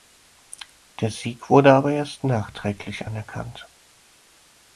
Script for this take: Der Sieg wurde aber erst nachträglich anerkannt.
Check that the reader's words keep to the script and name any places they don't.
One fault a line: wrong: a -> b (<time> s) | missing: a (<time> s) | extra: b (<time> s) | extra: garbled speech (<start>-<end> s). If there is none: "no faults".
no faults